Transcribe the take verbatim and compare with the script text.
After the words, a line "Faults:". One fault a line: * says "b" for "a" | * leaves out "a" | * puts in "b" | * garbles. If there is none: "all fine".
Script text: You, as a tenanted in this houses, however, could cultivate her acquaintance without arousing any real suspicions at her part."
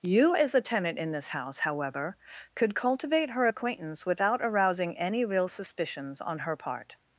You, as a tenant in this house, however, could cultivate her acquaintance without arousing any real suspicions on her part."
Faults:
* says "tenant" for "tenanted"
* says "house" for "houses"
* says "on" for "at"